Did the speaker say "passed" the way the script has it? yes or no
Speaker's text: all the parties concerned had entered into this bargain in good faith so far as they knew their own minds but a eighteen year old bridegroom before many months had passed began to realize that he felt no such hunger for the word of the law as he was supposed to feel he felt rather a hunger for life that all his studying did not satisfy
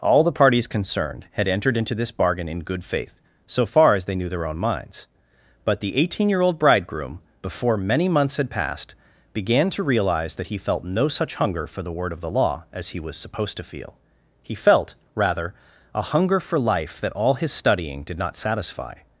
yes